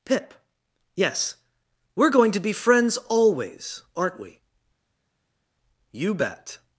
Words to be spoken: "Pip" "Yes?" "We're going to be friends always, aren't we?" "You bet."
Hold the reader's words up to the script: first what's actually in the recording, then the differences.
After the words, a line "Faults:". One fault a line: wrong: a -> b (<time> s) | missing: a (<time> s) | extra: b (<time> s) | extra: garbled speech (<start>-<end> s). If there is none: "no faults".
"Pip" "Yes?" "We're going to be friends always, aren't we?" "You bet."
Faults:
no faults